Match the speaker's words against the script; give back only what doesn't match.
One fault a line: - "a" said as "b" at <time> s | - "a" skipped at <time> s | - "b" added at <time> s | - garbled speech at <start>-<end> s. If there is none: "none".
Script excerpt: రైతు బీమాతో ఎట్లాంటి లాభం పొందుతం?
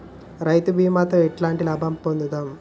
none